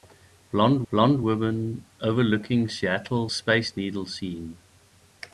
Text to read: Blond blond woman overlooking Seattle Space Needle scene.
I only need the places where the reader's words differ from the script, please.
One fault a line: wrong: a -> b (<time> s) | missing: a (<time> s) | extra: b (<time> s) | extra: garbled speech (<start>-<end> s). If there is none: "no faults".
no faults